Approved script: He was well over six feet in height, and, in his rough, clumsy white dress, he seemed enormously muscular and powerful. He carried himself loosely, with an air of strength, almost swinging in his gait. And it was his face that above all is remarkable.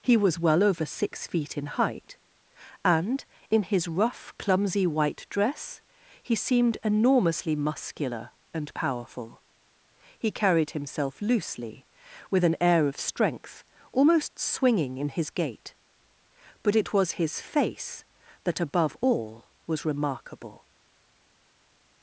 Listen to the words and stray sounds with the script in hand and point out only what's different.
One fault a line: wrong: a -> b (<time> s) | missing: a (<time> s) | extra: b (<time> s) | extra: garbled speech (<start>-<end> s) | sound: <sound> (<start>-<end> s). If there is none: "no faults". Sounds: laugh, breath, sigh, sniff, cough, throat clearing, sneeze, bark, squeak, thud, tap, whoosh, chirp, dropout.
wrong: And -> But (16.6 s)
wrong: is -> was (19.7 s)